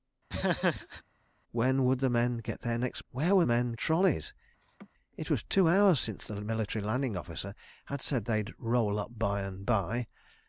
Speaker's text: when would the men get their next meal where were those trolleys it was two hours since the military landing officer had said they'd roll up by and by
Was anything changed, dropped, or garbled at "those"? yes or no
yes